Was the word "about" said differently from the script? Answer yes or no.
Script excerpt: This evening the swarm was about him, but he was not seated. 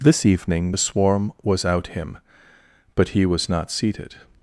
yes